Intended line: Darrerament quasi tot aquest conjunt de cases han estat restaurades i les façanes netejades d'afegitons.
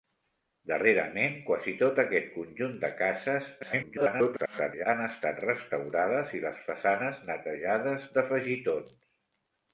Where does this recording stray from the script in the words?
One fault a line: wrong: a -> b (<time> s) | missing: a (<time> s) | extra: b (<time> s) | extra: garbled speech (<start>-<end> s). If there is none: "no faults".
extra: garbled speech (3.6-4.9 s)